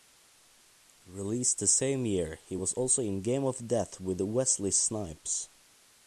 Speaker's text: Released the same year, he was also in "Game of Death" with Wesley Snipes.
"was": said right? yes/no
yes